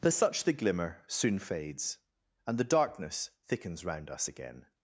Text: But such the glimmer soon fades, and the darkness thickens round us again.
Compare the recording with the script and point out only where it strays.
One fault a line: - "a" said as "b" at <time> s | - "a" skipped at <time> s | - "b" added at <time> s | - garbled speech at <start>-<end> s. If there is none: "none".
none